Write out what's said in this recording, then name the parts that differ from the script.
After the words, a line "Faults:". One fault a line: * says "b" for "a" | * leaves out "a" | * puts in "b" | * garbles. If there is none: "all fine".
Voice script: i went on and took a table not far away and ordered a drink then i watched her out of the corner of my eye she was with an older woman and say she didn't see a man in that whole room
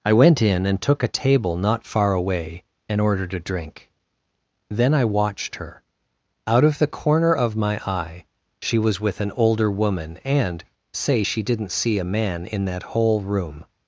i went in and took a table not far away and ordered a drink then i watched her out of the corner of my eye she was with an older woman and say she didn't see a man in that whole room
Faults:
* says "in" for "on"